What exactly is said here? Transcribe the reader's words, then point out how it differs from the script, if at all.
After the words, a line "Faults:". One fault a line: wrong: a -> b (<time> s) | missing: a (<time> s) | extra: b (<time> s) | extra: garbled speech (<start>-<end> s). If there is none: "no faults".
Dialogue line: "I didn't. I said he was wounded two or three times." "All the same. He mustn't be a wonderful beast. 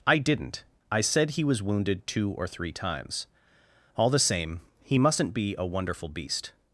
"I didn't. I said he was wounded two or three times." "All the same. He mustn't be a wonderful beast.
Faults:
no faults